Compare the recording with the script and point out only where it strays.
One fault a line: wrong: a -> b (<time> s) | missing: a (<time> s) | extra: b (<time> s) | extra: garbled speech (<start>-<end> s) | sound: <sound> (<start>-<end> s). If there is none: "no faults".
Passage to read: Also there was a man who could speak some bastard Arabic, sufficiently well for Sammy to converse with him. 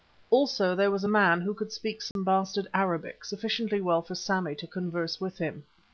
sound: dropout (2.1-2.2 s)